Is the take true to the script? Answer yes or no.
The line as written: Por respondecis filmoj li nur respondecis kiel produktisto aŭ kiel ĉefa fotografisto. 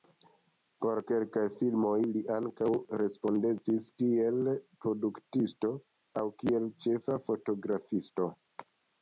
no